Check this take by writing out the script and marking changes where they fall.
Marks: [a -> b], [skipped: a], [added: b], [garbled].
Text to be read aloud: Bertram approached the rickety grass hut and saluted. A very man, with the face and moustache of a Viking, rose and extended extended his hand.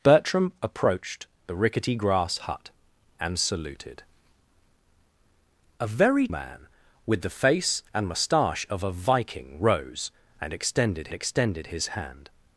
Bertram approached the rickety grass hut and saluted. A very man, with the face and moustache of a Viking, rose and extended extended his hand.